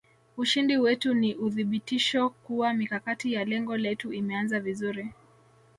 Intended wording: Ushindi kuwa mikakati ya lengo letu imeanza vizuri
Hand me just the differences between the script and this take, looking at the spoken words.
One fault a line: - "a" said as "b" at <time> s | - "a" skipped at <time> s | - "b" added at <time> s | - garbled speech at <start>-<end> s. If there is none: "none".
- "wetu ni uthibitisho" added at 0.8 s